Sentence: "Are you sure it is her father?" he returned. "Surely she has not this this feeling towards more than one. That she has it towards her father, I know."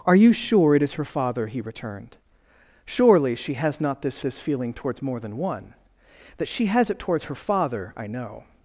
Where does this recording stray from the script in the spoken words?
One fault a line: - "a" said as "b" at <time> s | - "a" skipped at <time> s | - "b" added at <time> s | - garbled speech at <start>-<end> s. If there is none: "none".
none